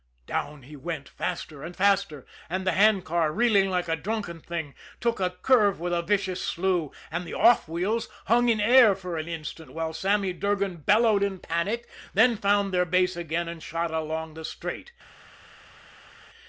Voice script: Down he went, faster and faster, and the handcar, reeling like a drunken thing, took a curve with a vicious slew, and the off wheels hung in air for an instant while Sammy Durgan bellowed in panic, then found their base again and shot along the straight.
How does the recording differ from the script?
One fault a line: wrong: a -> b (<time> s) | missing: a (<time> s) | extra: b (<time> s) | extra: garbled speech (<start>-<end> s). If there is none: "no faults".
no faults